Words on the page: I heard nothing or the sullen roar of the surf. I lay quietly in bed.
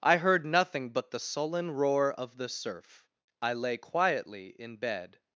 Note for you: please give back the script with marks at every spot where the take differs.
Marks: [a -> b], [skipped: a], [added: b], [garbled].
I heard nothing [or -> but] the sullen roar of the surf. I lay quietly in bed.